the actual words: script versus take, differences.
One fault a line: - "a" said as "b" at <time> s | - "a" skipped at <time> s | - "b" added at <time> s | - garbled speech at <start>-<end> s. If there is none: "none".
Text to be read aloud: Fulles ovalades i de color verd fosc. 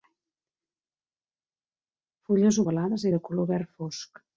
none